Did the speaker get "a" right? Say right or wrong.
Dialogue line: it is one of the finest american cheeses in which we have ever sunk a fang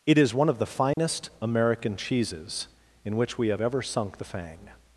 wrong